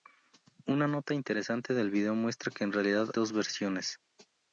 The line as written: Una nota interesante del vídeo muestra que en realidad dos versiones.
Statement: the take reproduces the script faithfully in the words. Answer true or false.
true